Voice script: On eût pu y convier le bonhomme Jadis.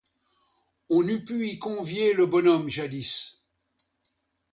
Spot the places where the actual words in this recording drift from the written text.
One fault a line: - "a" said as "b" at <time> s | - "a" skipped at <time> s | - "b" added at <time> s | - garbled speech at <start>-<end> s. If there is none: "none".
none